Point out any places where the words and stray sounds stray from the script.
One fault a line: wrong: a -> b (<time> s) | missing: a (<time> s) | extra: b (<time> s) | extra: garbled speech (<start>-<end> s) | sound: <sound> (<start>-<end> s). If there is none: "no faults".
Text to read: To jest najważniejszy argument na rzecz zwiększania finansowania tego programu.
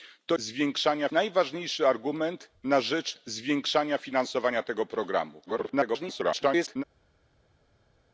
wrong: jest -> zwiększania (0.4 s)
extra: garbled speech (5.5-6.8 s)